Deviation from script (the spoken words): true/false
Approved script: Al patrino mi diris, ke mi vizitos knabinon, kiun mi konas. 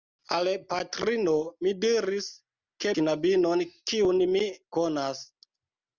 true